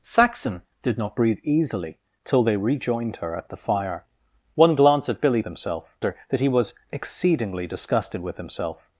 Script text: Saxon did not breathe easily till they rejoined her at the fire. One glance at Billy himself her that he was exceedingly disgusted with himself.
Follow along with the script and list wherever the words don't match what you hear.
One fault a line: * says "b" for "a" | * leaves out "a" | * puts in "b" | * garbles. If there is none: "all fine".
all fine